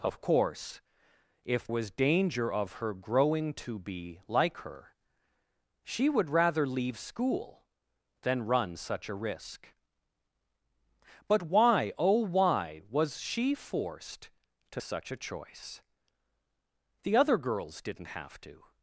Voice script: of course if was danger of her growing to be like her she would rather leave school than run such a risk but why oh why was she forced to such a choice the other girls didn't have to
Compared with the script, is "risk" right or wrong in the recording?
right